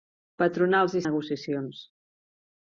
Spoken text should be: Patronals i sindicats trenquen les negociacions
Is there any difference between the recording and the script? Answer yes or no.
yes